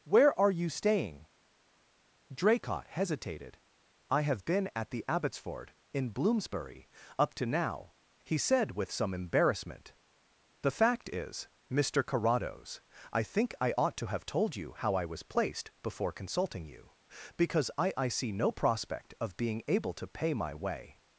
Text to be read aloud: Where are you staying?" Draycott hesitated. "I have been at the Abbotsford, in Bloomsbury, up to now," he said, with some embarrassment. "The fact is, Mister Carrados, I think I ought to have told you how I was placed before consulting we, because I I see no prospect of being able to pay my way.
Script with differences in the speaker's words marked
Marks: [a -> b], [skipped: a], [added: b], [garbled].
Where are you staying?" Draycott hesitated. "I have been at the Abbotsford, in Bloomsbury, up to now," he said, with some embarrassment. "The fact is, Mister Carrados, I think I ought to have told you how I was placed before consulting [we, -> you] because I I see no prospect of being able to pay my way.